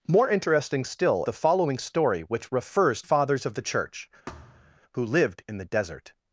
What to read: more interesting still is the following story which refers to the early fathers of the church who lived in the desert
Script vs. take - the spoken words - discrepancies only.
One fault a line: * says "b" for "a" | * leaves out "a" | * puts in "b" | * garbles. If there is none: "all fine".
* leaves out "is"
* leaves out "to the early"